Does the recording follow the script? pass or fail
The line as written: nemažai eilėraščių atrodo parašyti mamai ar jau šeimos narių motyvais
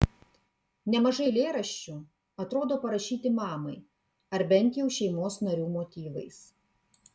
fail